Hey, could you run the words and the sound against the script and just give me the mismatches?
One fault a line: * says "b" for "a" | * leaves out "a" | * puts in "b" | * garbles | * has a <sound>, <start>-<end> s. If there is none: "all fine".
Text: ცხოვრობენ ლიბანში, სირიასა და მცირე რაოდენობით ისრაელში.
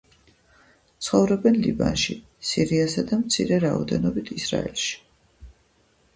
all fine